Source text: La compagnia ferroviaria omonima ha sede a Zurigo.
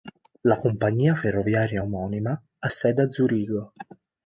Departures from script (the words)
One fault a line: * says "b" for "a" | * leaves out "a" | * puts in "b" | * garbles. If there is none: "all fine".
all fine